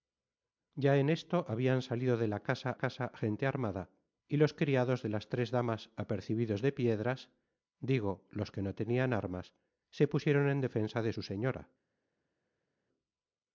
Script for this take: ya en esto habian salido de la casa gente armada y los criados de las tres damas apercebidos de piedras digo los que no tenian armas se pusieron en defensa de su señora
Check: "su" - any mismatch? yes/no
no